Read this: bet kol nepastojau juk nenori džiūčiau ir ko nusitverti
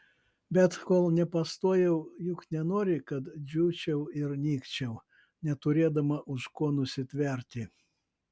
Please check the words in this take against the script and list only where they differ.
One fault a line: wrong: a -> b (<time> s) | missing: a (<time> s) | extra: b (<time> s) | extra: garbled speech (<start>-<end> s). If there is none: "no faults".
extra: kad (3.1 s)
extra: nykčiau neturėdama už (4.4 s)